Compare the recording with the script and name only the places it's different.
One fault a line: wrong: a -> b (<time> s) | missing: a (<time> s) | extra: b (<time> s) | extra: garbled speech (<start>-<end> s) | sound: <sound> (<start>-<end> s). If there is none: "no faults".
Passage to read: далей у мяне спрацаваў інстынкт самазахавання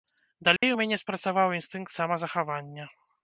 sound: dropout (0.6-0.6 s)